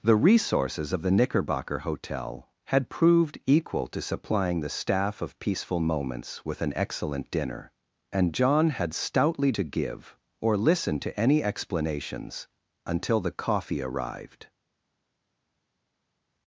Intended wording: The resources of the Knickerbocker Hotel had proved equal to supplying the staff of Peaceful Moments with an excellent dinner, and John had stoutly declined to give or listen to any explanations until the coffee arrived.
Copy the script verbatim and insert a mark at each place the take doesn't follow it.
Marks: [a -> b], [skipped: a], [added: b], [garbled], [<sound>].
The resources of the Knickerbocker Hotel had proved equal to supplying the staff of Peaceful Moments with an excellent dinner, and John had stoutly [skipped: declined] to give or listen to any explanations until the coffee arrived.